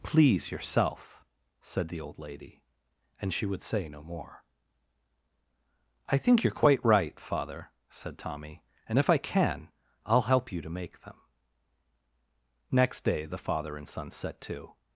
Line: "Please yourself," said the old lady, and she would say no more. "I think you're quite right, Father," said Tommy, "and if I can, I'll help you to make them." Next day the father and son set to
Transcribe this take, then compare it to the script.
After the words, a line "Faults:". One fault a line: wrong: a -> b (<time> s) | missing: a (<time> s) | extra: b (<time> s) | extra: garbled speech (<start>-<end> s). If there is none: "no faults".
"Please yourself," said the old lady, and she would say no more. "I think you're quite right, Father," said Tommy, "and if I can, I'll help you to make them." Next day the father and son set to
Faults:
no faults